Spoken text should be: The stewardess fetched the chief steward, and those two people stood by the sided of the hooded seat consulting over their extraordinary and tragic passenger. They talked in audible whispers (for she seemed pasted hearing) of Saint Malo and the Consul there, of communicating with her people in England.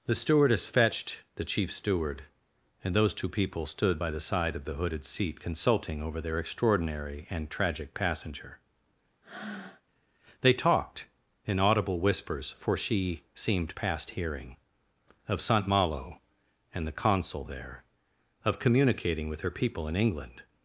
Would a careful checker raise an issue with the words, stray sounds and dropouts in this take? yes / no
yes